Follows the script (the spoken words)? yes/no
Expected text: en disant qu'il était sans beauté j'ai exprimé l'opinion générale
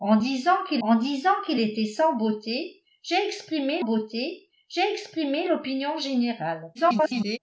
no